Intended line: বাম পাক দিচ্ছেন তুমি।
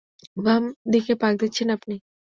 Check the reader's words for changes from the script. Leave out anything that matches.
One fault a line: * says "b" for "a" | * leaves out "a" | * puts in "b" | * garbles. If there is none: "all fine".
* puts in "দিকে"
* says "আপনি" for "তুমি"